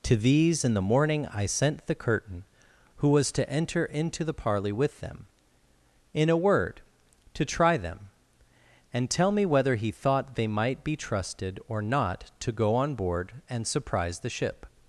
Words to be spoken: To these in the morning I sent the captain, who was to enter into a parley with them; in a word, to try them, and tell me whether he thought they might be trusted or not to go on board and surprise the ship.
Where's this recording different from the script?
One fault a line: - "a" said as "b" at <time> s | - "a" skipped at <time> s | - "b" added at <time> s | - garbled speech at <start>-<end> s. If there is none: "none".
- "captain" said as "curtain" at 1.9 s
- "a" said as "the" at 4.2 s